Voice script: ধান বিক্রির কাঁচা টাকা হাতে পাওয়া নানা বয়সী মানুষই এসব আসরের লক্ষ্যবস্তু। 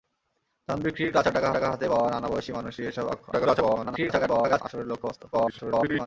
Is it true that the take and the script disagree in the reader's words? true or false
true